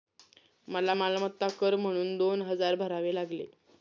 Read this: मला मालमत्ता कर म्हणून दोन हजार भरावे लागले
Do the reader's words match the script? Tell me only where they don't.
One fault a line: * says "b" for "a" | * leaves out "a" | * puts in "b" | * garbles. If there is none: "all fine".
all fine